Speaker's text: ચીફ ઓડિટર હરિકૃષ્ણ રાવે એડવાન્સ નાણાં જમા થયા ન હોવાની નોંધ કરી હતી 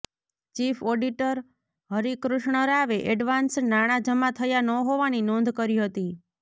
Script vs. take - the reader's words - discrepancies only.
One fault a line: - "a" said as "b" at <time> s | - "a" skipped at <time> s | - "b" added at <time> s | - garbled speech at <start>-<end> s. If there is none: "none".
none